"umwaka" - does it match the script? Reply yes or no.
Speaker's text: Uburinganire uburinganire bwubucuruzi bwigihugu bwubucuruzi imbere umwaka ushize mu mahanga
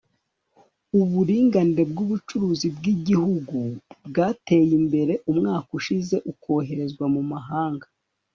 yes